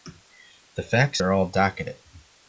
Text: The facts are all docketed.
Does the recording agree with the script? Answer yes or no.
yes